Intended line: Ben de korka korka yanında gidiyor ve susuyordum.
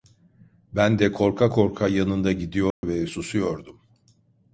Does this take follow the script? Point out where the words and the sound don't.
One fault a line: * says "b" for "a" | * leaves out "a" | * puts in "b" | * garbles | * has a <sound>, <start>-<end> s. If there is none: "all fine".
* has a dropout, 2.7-2.8 s